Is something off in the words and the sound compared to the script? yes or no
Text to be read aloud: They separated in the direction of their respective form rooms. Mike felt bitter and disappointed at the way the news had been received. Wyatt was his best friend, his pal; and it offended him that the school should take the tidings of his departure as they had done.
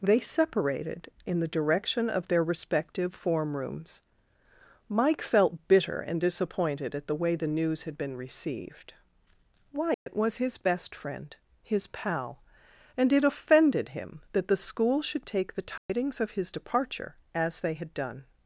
yes